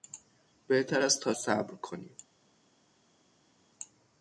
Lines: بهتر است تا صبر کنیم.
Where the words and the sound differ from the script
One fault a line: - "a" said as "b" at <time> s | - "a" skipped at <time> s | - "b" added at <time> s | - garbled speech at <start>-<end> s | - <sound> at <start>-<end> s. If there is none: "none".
none